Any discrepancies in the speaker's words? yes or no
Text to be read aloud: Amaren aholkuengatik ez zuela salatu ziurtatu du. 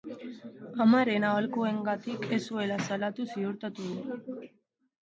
no